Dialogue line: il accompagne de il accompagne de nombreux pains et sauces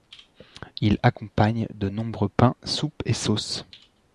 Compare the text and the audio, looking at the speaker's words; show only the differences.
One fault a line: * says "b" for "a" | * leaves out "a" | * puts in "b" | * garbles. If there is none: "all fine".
* leaves out "il accompagne de"
* puts in "soupes"